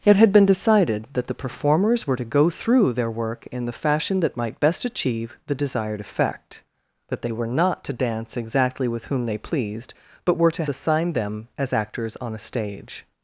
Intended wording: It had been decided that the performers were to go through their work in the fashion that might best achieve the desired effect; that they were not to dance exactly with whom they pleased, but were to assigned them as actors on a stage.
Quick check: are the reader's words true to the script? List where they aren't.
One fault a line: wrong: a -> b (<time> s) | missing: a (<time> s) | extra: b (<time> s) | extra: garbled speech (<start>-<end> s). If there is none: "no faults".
no faults